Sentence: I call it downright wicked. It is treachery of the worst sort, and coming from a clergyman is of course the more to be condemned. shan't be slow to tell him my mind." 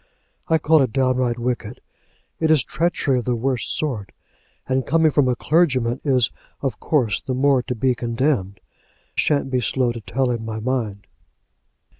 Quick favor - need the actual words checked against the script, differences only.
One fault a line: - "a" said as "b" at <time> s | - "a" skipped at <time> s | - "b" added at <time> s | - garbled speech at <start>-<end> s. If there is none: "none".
none